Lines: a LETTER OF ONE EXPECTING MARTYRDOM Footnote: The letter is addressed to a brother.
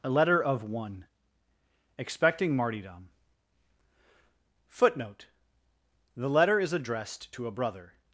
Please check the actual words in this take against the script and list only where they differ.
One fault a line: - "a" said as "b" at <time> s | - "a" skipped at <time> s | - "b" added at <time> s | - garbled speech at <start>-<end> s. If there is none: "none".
none